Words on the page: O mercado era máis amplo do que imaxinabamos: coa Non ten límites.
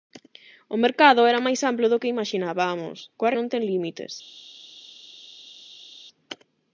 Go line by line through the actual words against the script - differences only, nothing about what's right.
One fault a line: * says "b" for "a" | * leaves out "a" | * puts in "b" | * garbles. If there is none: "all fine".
all fine